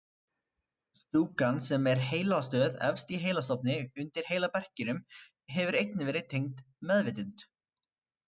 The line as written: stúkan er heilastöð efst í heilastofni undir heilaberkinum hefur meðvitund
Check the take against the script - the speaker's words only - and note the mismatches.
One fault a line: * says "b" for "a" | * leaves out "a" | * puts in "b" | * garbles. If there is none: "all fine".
* puts in "sem"
* puts in "einnig verið tengd"